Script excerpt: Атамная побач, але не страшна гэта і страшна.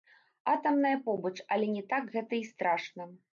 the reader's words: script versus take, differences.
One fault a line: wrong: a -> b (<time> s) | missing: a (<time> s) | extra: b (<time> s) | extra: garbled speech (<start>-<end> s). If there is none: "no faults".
wrong: страшна -> так (1.9 s)